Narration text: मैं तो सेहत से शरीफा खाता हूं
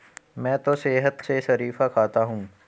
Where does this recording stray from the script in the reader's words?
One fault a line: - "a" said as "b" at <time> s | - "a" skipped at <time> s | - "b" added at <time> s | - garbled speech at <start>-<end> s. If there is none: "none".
none